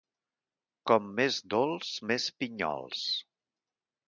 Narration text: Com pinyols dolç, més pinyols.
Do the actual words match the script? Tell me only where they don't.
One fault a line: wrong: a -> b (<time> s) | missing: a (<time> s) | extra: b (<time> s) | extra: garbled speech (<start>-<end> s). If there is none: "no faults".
wrong: pinyols -> més (1.2 s)